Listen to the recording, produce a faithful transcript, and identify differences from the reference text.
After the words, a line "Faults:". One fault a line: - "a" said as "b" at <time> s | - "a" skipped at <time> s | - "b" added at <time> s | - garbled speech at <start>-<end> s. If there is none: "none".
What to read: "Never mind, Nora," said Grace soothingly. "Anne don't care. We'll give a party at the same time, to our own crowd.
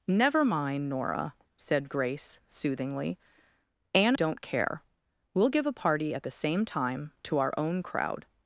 "Never mind, Nora," said Grace soothingly. "Anne don't care. We'll give a party at the same time, to our own crowd.
Faults:
none